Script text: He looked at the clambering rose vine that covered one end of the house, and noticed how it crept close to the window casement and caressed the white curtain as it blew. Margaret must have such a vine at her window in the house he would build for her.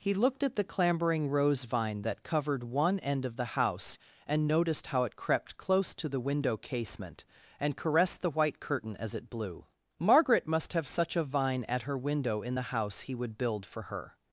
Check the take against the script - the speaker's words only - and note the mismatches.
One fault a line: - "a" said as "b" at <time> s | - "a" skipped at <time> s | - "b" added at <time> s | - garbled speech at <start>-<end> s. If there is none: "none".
none